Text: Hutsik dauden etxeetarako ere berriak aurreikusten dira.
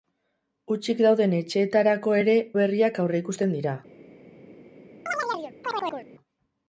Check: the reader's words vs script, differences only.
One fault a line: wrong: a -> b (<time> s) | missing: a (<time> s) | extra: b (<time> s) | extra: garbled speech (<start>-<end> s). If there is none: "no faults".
no faults